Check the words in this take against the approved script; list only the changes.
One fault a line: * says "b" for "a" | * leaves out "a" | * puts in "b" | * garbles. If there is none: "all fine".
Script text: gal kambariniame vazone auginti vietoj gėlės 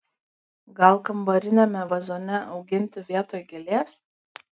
all fine